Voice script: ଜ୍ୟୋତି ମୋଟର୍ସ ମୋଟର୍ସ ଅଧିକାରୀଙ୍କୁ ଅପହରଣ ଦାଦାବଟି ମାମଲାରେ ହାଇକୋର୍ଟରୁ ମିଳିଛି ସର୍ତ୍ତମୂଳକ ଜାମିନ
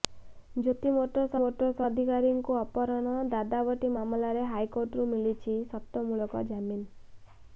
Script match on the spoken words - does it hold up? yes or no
yes